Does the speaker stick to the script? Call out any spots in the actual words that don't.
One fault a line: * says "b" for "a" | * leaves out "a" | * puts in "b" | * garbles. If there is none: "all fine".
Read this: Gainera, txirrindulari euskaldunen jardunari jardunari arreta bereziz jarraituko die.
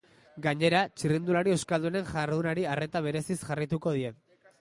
* leaves out "jardunari"